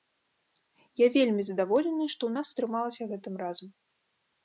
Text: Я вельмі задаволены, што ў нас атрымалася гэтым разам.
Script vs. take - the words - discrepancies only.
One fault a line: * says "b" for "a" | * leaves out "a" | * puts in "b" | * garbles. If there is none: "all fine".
all fine